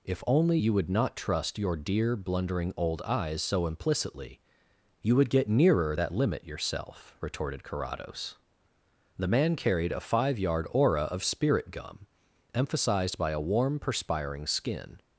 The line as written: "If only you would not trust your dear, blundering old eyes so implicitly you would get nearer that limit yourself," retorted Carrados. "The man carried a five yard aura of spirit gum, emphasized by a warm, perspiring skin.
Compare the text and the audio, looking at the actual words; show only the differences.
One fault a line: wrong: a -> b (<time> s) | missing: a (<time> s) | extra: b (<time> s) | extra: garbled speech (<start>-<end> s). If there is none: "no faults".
no faults